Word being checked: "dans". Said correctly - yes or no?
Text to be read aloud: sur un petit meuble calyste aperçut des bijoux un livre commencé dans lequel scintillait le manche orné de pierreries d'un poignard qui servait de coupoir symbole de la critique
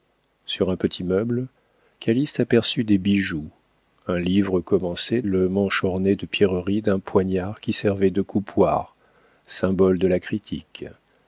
no